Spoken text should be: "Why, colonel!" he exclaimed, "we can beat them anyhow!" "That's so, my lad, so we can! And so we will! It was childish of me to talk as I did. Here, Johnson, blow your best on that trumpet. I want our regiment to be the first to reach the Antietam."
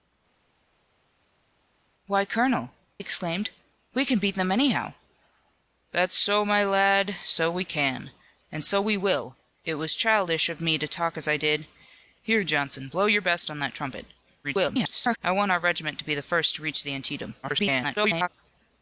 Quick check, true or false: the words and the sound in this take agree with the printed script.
false